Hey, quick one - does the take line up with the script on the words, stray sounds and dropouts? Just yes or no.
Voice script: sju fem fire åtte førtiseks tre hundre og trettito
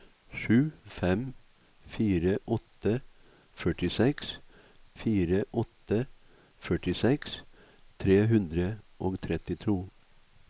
no